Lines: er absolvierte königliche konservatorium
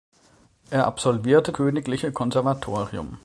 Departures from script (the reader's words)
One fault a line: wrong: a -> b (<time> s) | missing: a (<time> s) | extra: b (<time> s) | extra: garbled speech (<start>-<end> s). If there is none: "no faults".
no faults